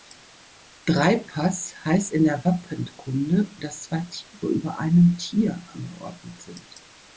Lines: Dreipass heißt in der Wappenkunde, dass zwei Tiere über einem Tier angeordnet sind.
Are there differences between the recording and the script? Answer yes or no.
no